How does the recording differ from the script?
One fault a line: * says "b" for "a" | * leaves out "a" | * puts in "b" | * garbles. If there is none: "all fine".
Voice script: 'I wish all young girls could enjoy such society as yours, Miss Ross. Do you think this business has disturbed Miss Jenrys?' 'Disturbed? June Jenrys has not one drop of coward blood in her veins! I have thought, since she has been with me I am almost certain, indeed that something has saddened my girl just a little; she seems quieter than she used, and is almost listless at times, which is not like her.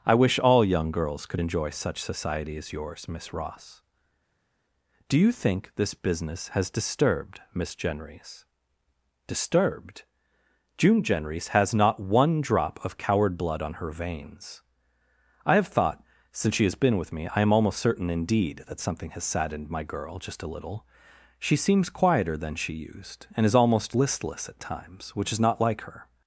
* says "on" for "in"